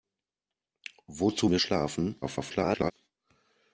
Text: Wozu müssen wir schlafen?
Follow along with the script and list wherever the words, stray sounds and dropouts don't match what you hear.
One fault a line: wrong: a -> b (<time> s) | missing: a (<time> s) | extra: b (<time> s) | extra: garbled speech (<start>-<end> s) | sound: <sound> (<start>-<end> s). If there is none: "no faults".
missing: müssen (1.5 s)
extra: garbled speech (2.2-2.9 s)